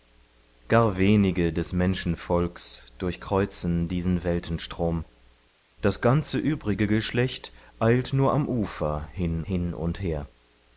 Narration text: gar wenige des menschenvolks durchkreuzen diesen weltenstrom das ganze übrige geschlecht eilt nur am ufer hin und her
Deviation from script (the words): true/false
true